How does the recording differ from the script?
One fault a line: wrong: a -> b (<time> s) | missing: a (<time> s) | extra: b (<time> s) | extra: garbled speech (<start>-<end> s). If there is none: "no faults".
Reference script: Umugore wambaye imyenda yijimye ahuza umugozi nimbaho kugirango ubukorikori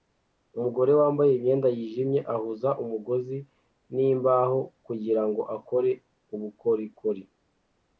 extra: akore (5.6 s)